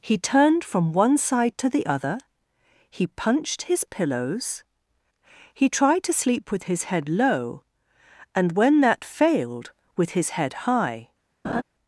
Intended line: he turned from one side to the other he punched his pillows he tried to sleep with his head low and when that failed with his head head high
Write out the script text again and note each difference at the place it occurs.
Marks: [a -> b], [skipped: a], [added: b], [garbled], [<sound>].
he turned from one side to the other he punched his pillows he tried to sleep with his head low and when that failed with his head [skipped: head] high [laugh]